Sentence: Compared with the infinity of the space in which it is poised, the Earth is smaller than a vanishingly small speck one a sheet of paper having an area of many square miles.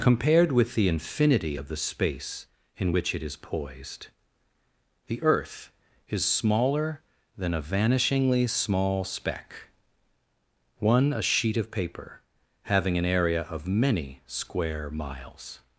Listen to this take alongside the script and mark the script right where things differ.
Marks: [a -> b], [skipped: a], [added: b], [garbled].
Compared with the infinity of the space in which it is poised, the Earth is smaller than a vanishingly small speck one a sheet of paper having an area of many square miles.